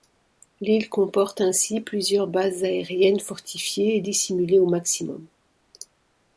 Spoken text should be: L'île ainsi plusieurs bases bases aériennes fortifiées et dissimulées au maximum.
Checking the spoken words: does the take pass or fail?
fail